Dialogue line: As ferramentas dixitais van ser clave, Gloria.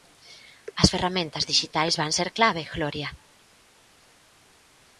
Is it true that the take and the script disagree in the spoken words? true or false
false